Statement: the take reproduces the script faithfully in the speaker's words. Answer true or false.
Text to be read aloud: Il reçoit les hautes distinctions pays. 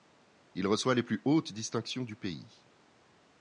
false